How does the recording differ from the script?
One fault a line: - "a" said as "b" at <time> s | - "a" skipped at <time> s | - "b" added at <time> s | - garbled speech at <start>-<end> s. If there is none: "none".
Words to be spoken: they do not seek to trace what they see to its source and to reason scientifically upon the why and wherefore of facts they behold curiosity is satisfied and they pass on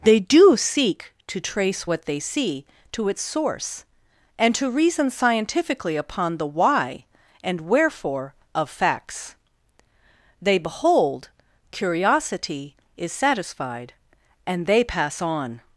- "not" skipped at 0.6 s